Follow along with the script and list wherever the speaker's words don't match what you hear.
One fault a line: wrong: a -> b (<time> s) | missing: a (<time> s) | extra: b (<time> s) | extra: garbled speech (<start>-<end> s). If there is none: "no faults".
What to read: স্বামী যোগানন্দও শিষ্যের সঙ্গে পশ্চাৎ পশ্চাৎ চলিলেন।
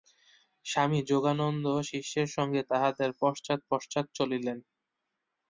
extra: তাঁহাদের (2.7 s)